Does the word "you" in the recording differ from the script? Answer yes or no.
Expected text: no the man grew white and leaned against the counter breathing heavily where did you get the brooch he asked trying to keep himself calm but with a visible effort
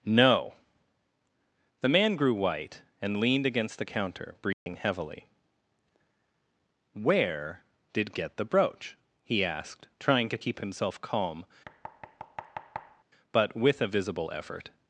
yes